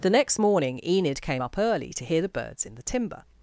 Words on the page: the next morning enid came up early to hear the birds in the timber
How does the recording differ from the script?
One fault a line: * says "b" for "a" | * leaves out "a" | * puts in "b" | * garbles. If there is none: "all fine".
all fine